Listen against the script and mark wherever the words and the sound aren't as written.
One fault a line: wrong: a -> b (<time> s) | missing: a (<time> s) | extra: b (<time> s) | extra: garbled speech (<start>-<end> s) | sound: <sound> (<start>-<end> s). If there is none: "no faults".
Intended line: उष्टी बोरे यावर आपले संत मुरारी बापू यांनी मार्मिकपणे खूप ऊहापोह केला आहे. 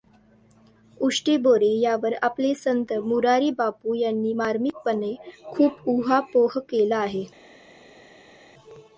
no faults